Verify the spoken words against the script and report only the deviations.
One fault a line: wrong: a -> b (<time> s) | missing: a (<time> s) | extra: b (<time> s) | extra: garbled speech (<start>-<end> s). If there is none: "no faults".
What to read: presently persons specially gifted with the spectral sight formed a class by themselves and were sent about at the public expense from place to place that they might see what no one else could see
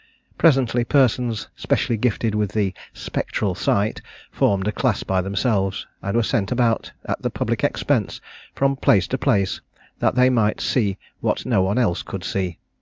no faults